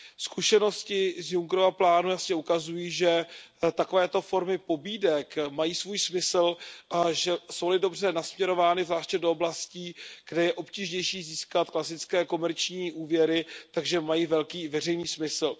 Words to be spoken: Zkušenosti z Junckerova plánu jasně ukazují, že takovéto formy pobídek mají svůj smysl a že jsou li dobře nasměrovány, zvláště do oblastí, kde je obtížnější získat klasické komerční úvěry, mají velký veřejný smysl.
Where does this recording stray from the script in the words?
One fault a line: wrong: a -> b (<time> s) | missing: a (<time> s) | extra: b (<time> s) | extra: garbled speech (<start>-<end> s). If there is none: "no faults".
no faults